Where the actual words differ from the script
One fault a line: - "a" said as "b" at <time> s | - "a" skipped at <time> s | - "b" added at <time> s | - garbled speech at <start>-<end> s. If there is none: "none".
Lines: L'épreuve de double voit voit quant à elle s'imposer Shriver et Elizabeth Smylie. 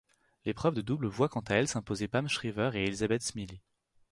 - "voit" skipped at 1.3 s
- "Pam" added at 2.1 s